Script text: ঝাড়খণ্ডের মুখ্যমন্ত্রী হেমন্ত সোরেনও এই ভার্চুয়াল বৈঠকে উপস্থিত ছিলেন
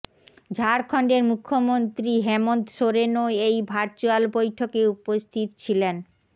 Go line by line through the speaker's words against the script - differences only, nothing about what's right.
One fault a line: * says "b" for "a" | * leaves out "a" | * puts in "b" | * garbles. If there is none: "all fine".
all fine